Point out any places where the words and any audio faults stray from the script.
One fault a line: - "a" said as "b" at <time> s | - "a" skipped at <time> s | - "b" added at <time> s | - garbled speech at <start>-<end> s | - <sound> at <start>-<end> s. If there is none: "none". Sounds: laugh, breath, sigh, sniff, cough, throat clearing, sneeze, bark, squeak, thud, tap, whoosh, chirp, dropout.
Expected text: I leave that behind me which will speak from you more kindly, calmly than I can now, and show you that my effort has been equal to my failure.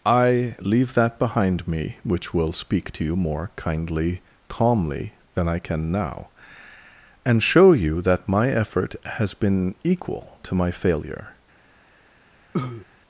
- "from" said as "to" at 2.9 s
- cough at 12.5-12.9 s